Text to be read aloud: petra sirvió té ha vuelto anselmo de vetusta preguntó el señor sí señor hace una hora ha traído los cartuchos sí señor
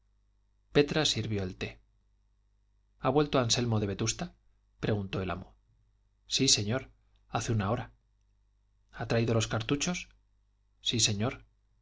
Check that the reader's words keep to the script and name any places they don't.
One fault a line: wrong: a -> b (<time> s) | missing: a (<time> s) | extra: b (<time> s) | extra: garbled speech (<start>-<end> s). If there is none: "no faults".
extra: el (1.4 s)
wrong: señor -> amo (5.3 s)